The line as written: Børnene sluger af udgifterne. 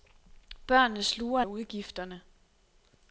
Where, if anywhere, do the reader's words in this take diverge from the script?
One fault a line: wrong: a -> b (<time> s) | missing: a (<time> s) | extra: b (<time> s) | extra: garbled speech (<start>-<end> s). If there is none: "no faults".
no faults